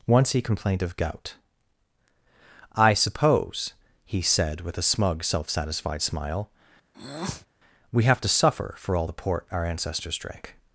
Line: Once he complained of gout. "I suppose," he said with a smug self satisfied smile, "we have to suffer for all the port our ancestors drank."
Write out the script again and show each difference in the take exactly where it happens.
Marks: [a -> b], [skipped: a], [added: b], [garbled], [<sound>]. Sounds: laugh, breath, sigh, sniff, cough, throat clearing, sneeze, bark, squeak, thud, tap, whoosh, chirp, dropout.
Once he complained of gout. "I suppose," he said with a smug self satisfied smile, [breath] "we have to suffer for all the port our ancestors drank."